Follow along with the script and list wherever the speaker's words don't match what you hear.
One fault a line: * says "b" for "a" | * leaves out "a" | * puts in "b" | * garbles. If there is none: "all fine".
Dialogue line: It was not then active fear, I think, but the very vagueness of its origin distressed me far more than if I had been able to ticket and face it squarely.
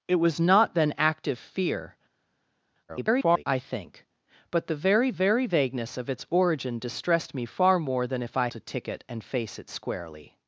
* garbles
* puts in "very"
* leaves out "had been able"